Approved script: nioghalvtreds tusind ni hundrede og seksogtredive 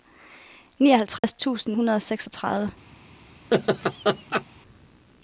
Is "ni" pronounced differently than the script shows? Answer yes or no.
yes